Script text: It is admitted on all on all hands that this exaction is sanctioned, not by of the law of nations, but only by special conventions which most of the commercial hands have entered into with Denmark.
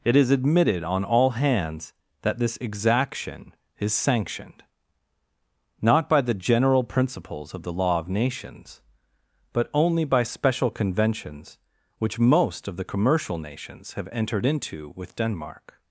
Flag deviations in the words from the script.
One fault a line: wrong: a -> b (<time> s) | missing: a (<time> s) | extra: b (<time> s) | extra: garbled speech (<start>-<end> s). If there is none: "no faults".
missing: on all (1.3 s)
extra: the general principles (6.2 s)
wrong: hands -> nations (13.4 s)